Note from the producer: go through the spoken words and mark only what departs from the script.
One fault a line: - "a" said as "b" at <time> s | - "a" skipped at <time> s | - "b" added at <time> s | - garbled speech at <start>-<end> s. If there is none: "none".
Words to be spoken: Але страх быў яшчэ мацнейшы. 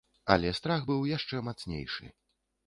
none